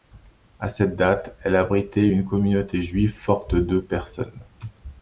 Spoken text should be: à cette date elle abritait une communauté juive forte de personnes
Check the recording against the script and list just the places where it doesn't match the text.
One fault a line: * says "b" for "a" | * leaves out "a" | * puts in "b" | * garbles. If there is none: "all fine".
all fine